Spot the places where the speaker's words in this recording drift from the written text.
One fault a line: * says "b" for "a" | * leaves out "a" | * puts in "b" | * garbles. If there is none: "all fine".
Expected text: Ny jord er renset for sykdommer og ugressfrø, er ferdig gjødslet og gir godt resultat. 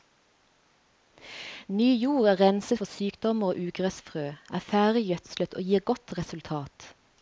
all fine